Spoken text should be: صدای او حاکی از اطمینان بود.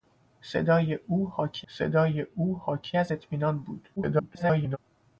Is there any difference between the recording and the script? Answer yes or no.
yes